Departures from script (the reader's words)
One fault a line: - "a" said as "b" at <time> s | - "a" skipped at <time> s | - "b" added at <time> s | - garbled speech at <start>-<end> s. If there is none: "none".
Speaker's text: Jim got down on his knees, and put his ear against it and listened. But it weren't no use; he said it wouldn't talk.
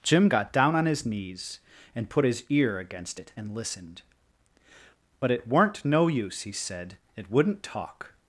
none